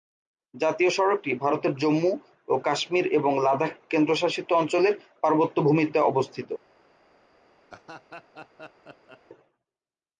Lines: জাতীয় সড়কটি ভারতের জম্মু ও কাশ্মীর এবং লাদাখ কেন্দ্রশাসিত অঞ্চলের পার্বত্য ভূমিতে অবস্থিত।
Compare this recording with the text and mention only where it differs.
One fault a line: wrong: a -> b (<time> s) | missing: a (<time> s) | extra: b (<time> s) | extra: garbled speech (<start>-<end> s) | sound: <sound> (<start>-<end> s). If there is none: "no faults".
sound: laugh (7.7-9.2 s)